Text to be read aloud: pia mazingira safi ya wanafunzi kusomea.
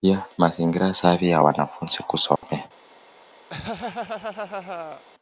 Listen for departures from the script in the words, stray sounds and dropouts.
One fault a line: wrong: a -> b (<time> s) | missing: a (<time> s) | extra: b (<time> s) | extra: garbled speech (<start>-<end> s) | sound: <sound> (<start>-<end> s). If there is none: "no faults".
sound: dropout (2.4-2.4 s)
sound: laugh (3.5-5.0 s)